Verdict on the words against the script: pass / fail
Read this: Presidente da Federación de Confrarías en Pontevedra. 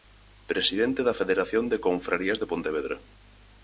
fail